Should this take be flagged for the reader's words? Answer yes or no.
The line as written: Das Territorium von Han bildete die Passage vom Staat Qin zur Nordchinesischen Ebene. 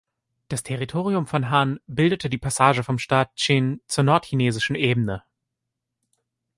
no